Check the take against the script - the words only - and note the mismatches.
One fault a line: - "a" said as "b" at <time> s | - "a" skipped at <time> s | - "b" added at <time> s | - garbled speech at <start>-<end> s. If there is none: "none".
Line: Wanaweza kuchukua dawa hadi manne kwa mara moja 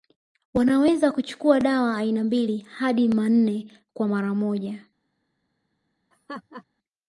- "aina mbili" added at 2.0 s